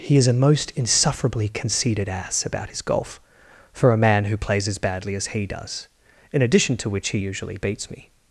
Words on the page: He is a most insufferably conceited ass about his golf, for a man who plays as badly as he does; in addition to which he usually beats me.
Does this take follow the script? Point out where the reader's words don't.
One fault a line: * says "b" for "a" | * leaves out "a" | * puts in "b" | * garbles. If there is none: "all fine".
all fine